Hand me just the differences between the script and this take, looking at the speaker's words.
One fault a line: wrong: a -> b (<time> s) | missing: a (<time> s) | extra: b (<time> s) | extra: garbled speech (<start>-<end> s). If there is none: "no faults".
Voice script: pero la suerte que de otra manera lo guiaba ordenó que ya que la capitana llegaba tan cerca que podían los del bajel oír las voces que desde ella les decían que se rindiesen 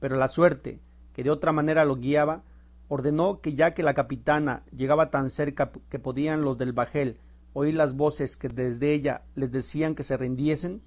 no faults